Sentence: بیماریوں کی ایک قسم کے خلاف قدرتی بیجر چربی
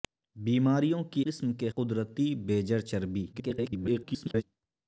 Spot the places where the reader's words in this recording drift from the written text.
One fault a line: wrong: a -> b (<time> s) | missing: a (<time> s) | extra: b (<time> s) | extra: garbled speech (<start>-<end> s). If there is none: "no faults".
missing: ایک (1.2 s)
missing: خلاف (1.7 s)
extra: garbled speech (3.3-4.4 s)